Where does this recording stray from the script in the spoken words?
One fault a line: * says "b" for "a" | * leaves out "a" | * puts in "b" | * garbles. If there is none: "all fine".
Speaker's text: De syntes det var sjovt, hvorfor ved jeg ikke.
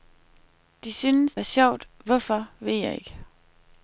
* leaves out "det"